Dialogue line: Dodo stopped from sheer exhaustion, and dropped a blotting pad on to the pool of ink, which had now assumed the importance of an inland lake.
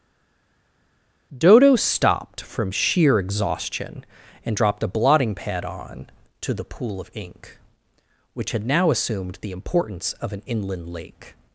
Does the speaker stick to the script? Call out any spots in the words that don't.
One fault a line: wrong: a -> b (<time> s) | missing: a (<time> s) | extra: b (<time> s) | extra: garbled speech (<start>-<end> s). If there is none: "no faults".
no faults